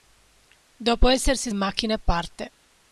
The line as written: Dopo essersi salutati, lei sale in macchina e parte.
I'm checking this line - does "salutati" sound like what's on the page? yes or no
no